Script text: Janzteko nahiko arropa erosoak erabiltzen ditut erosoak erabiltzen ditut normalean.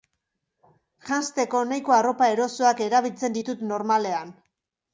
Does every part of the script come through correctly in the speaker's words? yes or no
no